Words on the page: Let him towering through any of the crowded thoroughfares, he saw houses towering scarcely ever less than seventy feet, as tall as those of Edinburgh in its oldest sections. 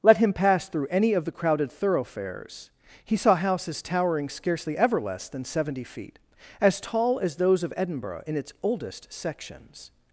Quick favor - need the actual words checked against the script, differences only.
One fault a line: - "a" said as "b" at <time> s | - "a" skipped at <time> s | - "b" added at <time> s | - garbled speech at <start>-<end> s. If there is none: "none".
- "towering" said as "pass" at 0.3 s